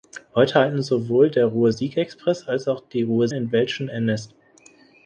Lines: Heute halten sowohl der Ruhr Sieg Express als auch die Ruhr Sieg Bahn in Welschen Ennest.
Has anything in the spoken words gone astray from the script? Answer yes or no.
yes